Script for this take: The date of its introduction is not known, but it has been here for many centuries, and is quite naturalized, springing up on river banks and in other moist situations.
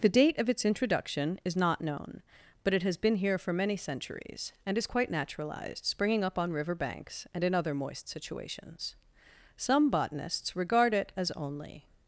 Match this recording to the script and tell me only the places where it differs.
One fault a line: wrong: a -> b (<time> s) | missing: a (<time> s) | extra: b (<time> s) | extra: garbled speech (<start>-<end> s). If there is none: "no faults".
extra: Some botanists regard it as only (9.6 s)